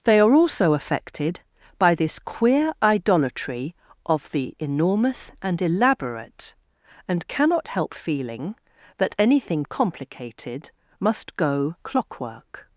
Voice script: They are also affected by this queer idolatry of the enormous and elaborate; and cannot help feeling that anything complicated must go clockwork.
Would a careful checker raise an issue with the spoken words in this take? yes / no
no